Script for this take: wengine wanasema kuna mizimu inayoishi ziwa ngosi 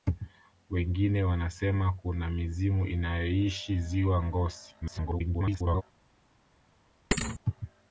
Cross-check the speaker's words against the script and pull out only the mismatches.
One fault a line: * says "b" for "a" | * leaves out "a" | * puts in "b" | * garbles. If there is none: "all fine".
* garbles